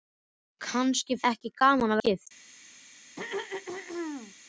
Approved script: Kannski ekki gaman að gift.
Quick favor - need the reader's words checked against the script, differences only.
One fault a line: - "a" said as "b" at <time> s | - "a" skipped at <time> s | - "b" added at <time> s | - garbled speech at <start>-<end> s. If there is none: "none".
none